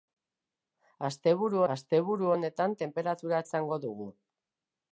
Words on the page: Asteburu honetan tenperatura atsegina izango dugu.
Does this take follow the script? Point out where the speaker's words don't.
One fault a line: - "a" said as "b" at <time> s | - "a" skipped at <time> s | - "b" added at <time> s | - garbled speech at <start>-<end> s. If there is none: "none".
- "asteburu" added at 1.7 s
- "atsegina" skipped at 3.4 s